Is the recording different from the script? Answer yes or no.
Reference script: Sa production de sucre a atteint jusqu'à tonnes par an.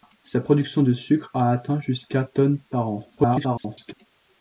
yes